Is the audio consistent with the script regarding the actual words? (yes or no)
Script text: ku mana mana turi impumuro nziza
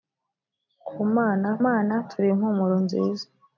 yes